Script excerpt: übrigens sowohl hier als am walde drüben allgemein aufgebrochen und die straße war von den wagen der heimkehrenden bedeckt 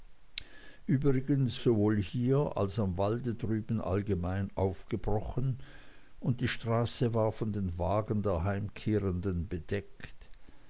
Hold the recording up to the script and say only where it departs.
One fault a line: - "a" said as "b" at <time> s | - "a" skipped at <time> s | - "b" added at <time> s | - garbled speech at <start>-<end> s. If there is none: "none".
none